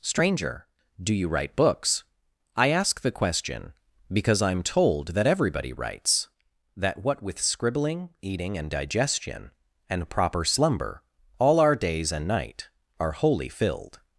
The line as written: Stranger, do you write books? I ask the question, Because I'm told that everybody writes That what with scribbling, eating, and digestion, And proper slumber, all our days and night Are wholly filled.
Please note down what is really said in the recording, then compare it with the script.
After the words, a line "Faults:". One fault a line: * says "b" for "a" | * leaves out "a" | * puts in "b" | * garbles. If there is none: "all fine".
Stranger, do you write books? I ask the question, Because I'm told that everybody writes That what with scribbling, eating, and digestion, And proper slumber, all our days and night Are wholly filled.
Faults:
all fine